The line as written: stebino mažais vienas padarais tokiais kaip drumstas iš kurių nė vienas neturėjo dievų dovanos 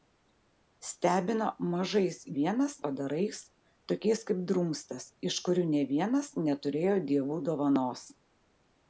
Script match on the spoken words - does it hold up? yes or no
yes